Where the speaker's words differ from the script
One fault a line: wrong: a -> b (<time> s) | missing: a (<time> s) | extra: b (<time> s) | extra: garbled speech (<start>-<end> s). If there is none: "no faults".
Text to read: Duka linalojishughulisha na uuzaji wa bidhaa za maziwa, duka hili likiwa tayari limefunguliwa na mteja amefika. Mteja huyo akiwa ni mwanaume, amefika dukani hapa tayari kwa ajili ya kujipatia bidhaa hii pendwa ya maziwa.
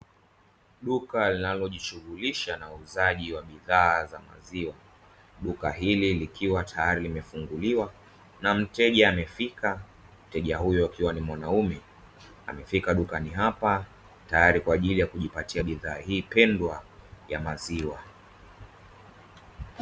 no faults